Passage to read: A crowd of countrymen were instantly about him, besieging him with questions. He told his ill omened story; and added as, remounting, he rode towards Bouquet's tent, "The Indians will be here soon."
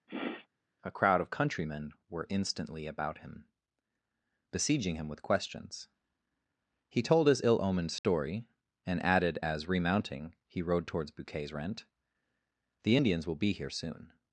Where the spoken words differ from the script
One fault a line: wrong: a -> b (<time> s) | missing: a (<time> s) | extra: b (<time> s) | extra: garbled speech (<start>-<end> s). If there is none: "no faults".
wrong: tent -> rent (11.5 s)